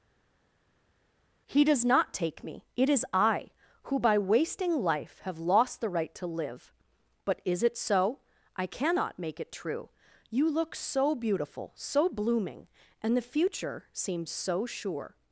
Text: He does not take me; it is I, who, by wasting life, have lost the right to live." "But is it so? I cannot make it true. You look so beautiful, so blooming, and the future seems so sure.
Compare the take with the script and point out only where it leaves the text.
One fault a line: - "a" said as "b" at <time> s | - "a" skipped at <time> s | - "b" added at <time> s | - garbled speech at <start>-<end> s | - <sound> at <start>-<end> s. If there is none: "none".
none